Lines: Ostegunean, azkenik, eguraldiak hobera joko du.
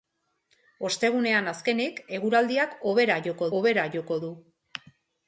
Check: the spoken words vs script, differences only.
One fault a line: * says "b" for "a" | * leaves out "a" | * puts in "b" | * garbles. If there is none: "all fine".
* puts in "hobera joko"